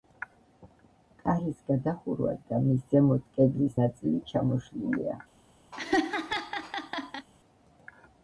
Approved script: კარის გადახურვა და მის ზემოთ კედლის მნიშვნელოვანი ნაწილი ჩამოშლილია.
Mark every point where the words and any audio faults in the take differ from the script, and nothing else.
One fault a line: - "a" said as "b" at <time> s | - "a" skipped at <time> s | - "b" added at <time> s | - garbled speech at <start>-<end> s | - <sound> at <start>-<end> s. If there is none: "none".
- "მნიშვნელოვანი" skipped at 3.8 s
- laugh at 5.7-7.3 s